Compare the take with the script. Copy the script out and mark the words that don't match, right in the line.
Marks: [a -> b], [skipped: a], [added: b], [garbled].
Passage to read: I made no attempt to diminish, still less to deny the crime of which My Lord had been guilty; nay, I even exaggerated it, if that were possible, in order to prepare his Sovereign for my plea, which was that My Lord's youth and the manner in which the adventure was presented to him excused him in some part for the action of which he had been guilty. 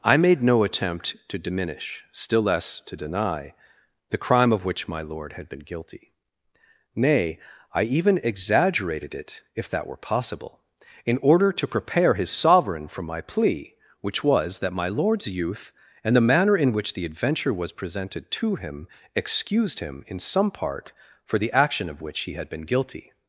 I made no attempt to diminish, still less to deny the crime of which My Lord had been guilty; nay, I even exaggerated it, if that were possible, in order to prepare his Sovereign for my plea, which was that My Lord's youth and the manner in which the adventure was presented to him excused him in some part for the action of which he had been guilty.